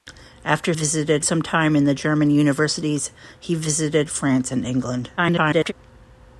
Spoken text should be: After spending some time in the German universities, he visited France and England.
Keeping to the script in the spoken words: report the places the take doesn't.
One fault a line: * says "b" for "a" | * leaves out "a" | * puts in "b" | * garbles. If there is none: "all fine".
* says "visited" for "spending"
* garbles